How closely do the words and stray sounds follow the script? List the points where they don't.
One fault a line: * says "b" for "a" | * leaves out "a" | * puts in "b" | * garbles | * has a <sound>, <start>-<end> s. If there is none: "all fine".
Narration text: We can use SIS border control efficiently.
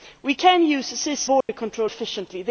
* has a dropout, 1.4-1.5 s